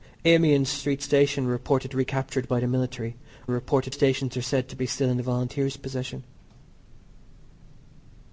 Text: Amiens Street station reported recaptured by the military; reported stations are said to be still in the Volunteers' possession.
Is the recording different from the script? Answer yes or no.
no